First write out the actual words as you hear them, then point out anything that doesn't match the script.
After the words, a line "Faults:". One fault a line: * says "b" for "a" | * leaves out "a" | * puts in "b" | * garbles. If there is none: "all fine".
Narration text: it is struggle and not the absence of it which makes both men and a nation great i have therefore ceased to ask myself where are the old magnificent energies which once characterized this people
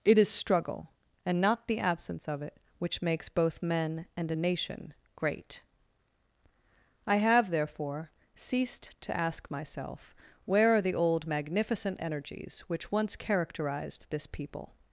it is struggle and not the absence of it which makes both men and a nation great i have therefore ceased to ask myself where are the old magnificent energies which once characterized this people
Faults:
all fine